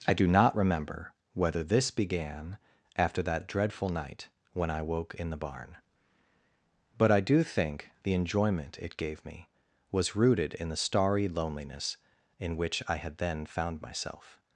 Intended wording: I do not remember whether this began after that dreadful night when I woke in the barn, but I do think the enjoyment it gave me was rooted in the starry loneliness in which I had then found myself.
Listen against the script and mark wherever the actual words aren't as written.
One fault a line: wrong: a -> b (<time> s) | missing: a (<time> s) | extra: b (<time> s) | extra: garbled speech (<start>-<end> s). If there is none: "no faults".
no faults